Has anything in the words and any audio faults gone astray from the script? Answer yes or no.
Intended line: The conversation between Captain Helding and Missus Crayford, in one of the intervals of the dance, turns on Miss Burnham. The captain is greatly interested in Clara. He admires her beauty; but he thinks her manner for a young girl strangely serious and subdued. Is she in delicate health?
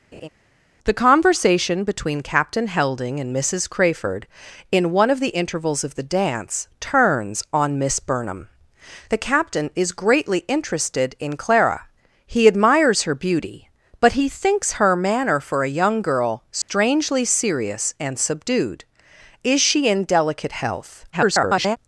yes